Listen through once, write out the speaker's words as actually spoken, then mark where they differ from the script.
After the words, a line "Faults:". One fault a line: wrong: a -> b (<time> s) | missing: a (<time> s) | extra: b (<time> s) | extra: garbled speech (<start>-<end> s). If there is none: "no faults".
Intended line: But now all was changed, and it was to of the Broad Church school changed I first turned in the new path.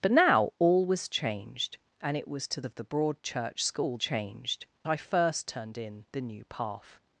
But now all was changed, and it was to of the Broad Church school changed I first turned in the new path.
Faults:
no faults